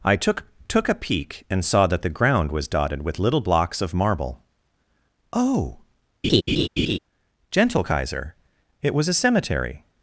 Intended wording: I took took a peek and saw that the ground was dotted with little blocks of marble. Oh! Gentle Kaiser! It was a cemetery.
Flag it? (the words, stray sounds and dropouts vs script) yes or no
yes